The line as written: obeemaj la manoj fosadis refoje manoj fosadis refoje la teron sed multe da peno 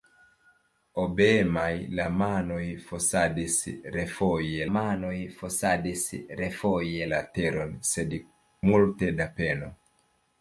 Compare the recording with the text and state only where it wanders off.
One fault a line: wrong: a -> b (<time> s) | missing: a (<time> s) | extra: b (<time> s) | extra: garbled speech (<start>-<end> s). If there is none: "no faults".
no faults